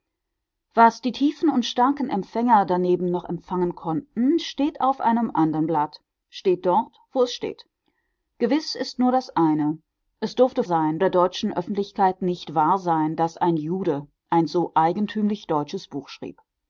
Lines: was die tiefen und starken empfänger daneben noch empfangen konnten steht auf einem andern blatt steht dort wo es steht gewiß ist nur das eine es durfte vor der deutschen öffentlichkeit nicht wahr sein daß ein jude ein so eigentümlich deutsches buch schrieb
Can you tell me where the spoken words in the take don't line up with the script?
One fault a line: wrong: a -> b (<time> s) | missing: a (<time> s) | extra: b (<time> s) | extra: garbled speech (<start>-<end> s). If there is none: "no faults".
wrong: vor -> sein (10.6 s)